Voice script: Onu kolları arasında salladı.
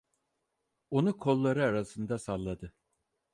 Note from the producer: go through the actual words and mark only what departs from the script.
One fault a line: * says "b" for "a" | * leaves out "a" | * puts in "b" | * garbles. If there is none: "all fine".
all fine